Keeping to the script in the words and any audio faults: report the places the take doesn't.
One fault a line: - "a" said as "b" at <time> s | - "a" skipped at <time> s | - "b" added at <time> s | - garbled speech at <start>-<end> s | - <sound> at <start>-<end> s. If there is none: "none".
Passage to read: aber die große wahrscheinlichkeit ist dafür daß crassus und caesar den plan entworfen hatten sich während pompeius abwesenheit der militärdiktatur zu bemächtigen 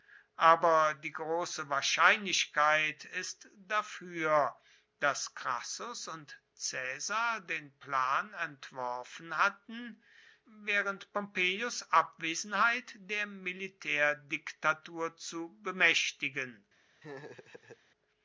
- "sich" skipped at 10.0 s
- laugh at 17.0-17.8 s